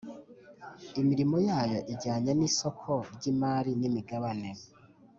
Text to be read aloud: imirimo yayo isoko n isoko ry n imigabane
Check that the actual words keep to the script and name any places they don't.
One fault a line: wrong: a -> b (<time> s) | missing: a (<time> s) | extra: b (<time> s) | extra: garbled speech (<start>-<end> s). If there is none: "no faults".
wrong: isoko -> ijyanye (1.9 s)
extra: imari (3.3 s)